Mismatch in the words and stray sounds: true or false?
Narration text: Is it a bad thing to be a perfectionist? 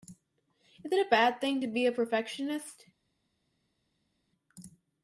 false